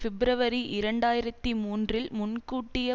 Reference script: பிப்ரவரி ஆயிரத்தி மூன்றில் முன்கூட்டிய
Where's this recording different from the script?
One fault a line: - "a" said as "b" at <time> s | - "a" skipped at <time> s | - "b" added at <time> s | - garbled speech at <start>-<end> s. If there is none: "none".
- "இரண்டு" added at 0.7 s